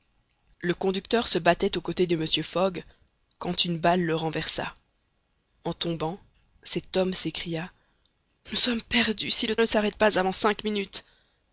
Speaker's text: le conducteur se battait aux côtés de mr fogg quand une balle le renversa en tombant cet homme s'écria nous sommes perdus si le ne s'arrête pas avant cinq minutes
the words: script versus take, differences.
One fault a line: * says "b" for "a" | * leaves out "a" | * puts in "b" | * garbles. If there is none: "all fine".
all fine